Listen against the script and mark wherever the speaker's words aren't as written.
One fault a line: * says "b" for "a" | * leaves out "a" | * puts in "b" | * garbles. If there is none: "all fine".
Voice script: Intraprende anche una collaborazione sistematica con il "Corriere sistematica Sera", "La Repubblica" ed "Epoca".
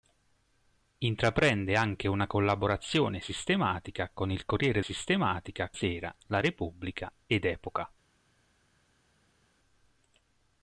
all fine